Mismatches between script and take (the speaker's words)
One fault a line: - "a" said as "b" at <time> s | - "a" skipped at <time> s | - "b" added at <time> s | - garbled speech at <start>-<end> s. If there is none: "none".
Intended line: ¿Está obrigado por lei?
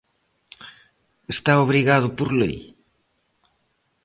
none